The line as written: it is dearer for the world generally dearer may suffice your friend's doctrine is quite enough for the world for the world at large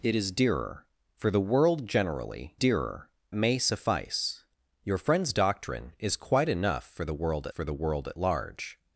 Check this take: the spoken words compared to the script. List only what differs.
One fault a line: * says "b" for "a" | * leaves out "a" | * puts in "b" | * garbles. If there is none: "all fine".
all fine